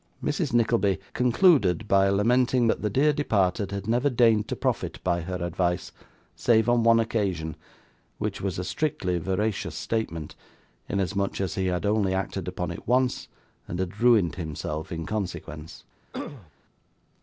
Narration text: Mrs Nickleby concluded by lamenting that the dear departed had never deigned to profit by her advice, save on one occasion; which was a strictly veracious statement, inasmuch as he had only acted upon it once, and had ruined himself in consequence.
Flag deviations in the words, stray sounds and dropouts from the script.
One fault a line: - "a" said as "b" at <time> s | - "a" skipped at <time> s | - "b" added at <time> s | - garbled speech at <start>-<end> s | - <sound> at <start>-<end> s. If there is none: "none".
- throat clearing at 16.1-16.5 s